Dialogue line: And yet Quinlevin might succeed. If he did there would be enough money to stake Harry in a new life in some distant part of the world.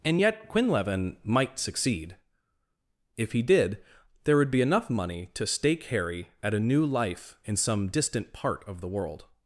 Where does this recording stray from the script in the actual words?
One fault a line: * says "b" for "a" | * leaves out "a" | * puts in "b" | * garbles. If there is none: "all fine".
* says "at" for "in"